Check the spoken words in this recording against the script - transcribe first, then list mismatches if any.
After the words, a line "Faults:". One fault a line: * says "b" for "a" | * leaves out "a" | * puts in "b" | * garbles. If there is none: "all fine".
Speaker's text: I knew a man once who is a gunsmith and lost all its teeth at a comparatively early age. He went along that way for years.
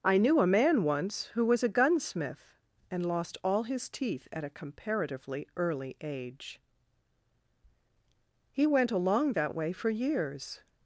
I knew a man once who was a gunsmith and lost all his teeth at a comparatively early age. He went along that way for years.
Faults:
* says "was" for "is"
* says "his" for "its"